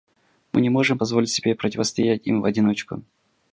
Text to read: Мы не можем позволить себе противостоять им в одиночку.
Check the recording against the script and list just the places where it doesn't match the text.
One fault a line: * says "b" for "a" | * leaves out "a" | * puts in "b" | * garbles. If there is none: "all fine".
all fine